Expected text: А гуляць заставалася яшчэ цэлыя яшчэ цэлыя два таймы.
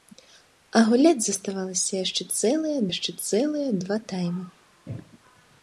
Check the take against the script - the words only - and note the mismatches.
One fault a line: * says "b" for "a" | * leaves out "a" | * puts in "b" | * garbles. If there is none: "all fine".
all fine